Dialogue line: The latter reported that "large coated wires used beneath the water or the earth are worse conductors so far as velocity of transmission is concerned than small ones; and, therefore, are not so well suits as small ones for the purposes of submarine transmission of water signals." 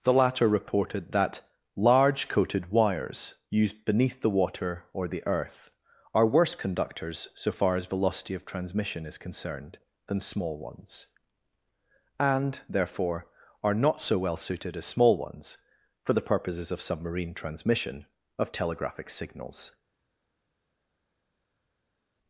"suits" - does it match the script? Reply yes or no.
no